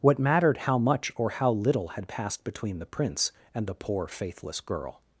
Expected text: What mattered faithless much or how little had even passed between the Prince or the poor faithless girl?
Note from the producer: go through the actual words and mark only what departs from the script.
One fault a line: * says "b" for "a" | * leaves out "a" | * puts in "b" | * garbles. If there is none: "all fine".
* says "how" for "faithless"
* leaves out "even"
* says "and" for "or"